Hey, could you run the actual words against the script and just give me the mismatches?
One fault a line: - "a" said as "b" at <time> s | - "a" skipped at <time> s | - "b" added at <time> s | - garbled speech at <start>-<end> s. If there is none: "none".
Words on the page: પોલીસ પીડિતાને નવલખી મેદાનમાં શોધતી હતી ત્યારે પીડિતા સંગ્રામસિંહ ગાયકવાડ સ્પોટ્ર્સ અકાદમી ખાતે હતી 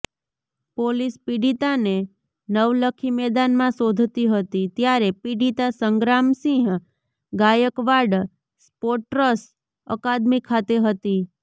none